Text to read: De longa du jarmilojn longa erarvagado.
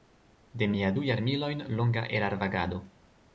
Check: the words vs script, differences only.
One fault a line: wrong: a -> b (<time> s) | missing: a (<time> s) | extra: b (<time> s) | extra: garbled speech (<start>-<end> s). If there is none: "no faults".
wrong: longa -> mia (0.7 s)